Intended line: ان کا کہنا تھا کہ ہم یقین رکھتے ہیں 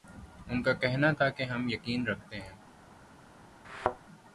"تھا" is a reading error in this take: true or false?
false